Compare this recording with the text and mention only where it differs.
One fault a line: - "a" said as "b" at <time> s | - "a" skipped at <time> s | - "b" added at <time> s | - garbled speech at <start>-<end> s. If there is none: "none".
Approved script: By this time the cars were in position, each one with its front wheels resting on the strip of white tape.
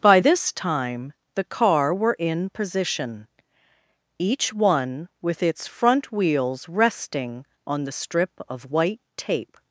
- "cars" said as "car" at 1.4 s